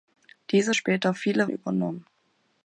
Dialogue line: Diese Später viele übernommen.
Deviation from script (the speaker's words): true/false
false